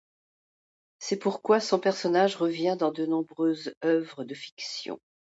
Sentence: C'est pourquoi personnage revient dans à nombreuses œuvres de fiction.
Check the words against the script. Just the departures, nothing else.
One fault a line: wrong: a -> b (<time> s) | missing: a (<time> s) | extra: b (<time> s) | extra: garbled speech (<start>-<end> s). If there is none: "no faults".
extra: son (1.6 s)
wrong: à -> de (2.9 s)